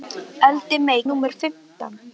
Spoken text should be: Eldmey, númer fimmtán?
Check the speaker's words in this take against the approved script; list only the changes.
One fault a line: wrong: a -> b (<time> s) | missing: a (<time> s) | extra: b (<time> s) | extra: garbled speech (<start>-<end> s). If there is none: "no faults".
no faults